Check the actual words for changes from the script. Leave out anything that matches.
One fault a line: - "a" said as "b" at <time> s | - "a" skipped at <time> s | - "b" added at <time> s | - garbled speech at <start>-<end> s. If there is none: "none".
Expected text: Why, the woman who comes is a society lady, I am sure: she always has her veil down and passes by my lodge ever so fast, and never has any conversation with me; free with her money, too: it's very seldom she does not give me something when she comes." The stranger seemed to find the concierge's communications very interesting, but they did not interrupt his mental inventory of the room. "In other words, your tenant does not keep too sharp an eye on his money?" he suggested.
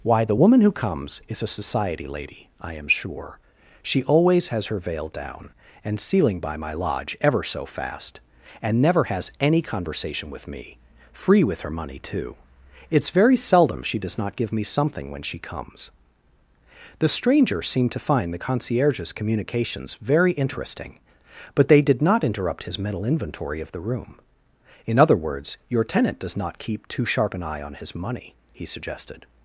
- "passes" said as "sealing" at 6.0 s